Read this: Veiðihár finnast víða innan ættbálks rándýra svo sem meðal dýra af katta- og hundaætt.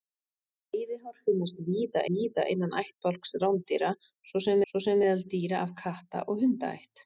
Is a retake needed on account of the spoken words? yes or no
yes